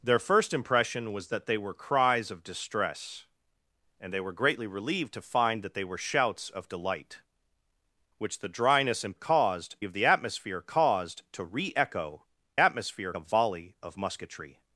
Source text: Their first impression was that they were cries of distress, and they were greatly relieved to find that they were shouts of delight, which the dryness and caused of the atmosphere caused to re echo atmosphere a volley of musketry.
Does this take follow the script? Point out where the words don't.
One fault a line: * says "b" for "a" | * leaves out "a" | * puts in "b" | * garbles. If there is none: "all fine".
all fine